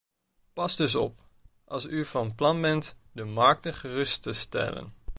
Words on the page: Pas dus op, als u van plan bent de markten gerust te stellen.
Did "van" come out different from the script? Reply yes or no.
no